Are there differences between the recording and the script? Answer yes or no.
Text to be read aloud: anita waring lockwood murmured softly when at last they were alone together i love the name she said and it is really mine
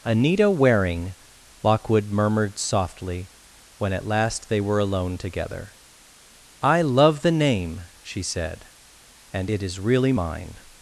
no